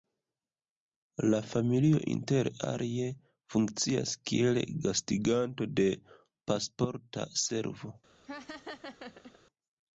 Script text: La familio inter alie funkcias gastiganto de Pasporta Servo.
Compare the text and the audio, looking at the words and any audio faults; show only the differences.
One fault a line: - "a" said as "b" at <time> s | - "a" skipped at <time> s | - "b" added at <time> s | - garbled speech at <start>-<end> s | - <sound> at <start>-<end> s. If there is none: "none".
- "kiel" added at 4.3 s
- laugh at 8.2-9.4 s